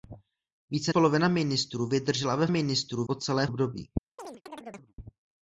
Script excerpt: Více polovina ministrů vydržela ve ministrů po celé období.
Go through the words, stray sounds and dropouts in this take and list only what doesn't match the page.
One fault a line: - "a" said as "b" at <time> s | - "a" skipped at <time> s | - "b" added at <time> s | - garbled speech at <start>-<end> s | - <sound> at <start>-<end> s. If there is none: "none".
- chirp at 4.2-4.9 s